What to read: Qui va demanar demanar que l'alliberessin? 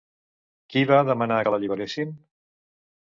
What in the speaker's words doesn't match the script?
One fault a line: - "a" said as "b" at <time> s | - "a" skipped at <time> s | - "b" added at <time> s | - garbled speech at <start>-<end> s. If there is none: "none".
- "demanar" skipped at 1.4 s